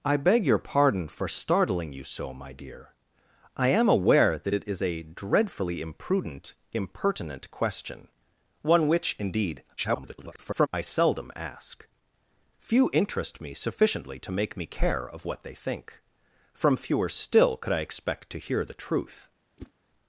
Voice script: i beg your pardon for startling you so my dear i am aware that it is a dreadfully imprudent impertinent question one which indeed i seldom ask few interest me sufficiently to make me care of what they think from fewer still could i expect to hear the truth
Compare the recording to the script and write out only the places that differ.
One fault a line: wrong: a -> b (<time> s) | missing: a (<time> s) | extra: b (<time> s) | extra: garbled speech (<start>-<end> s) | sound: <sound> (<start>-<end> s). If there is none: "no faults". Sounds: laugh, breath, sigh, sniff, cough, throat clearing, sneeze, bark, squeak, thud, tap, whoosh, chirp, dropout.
extra: garbled speech (9.8-10.7 s)
sound: whoosh (19.6-19.7 s)